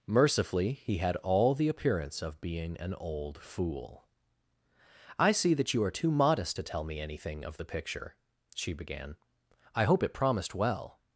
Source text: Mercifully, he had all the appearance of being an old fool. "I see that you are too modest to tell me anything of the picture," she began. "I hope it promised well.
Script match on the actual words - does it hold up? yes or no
yes